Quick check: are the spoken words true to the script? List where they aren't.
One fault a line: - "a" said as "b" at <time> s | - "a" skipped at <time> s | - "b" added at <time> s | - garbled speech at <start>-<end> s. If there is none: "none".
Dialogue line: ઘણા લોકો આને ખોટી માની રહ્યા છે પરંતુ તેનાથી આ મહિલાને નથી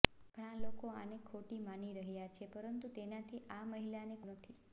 none